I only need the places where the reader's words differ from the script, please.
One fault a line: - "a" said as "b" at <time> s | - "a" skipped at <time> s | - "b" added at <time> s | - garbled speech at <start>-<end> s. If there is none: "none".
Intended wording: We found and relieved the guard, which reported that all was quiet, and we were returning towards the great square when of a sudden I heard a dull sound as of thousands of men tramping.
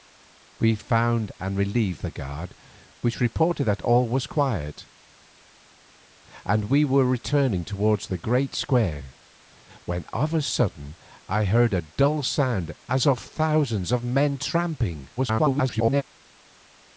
- garbled speech at 15.2-16.0 s